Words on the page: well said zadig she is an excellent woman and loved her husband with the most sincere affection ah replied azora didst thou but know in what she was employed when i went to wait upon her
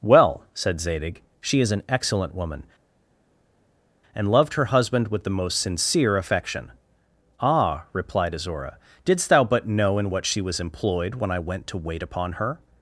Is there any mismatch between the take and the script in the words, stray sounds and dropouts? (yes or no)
no